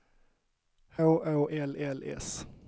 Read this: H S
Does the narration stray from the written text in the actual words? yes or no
yes